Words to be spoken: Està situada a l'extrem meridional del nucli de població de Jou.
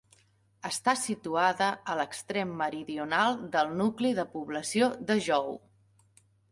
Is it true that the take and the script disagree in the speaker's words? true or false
false